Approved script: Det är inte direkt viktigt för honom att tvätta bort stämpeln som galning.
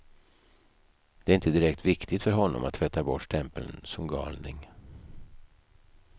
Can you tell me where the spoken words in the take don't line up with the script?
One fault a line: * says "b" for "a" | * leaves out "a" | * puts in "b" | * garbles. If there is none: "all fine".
all fine